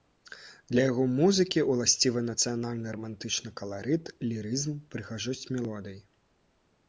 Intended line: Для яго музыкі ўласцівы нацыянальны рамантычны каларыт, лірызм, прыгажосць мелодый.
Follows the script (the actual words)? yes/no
yes